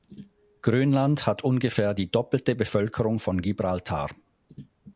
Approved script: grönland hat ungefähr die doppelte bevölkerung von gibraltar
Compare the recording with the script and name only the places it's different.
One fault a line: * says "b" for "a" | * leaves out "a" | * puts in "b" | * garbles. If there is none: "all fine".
all fine